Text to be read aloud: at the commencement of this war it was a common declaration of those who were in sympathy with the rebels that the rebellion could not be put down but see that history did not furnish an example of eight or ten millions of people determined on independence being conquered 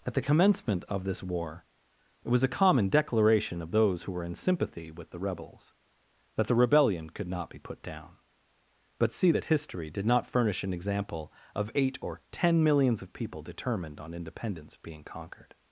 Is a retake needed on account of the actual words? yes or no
no